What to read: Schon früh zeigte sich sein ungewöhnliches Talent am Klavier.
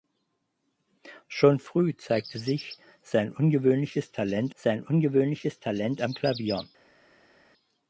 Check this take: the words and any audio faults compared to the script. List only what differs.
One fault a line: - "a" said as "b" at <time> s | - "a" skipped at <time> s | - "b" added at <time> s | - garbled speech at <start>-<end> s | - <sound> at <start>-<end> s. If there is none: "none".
- "sein ungewöhnliches Talent" added at 4.5 s